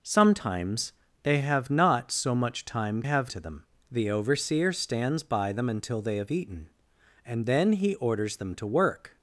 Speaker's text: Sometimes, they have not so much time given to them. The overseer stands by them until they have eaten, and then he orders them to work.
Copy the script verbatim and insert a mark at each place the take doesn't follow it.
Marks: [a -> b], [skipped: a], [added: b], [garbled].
Sometimes, they have not so much time [given -> have] to them. The overseer stands by them until they have eaten, and then he orders them to work.